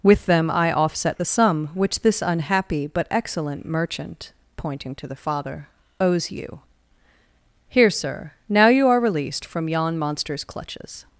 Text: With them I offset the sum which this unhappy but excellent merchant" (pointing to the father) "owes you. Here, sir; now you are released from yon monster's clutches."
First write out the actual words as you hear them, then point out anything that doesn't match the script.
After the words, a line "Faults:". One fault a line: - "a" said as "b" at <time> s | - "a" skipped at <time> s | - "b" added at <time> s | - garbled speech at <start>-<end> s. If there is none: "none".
With them I offset the sum which this unhappy but excellent merchant" (pointing to the father) "owes you. Here, sir; now you are released from yon monster's clutches."
Faults:
none